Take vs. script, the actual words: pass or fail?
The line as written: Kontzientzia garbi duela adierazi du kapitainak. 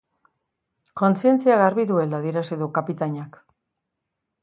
pass